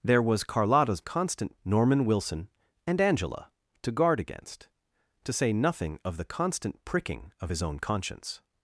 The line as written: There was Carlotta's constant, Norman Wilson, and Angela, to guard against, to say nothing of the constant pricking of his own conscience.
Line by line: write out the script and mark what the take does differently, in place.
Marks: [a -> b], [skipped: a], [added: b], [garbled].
There was Carlotta's constant, Norman Wilson, and Angela, to guard against, to say nothing of the constant pricking of his own conscience.